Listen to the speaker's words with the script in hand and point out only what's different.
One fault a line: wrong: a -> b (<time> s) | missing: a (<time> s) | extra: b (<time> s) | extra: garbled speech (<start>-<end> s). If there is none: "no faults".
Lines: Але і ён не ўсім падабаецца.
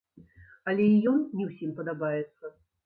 no faults